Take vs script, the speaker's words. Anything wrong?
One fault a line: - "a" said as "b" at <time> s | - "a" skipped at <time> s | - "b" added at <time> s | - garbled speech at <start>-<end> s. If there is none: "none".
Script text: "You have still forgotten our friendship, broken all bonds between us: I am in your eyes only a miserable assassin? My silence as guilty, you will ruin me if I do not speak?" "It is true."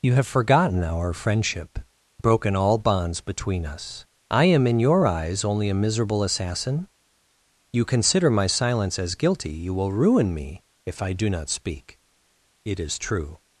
- "still" skipped at 0.2 s
- "You consider" added at 7.7 s